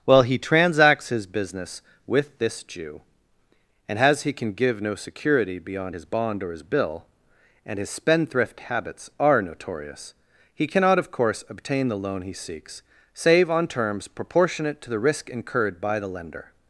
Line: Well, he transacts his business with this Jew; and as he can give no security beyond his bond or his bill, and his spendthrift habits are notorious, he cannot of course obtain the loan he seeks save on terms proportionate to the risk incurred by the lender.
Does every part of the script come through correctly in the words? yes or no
yes